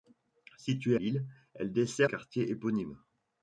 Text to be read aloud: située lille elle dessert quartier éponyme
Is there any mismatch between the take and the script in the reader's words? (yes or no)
no